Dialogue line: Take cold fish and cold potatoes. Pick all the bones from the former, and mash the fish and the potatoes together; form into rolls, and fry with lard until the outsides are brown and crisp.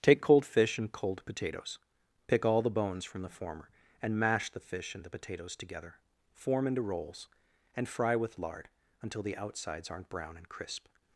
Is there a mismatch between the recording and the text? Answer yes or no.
yes